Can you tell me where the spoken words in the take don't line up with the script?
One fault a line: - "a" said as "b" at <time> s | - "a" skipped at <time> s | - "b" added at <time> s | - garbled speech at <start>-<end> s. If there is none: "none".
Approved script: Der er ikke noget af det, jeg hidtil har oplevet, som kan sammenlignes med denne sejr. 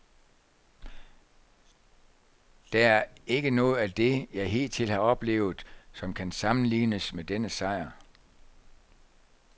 none